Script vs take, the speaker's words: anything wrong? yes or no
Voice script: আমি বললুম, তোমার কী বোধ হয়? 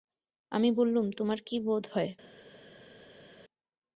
no